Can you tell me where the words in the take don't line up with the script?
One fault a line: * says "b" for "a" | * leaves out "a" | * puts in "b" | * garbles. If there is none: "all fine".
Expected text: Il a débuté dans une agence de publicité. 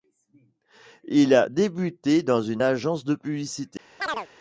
all fine